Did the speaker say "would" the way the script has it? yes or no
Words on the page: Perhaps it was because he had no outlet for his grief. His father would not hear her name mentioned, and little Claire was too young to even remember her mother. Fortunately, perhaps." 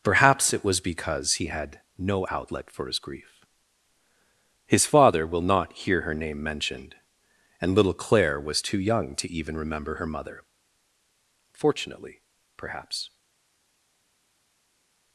no